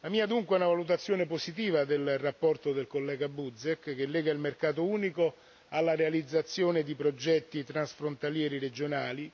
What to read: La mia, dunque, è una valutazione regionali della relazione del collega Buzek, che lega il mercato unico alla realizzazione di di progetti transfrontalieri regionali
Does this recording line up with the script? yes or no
no